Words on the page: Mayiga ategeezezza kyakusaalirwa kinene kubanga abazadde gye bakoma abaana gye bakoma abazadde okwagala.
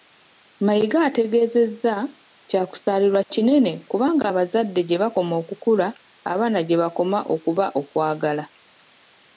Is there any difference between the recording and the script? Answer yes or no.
yes